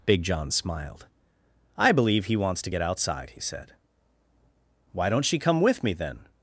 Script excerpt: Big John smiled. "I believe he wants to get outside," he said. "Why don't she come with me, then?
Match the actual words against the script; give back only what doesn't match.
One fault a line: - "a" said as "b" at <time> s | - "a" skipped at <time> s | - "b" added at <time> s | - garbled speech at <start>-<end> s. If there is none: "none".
none